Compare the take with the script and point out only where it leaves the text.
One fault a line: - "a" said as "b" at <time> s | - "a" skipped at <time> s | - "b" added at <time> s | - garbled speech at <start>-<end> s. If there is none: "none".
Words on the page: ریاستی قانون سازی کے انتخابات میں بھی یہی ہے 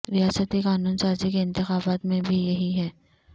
none